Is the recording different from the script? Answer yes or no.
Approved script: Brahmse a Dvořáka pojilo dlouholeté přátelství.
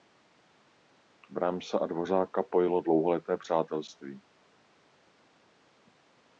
no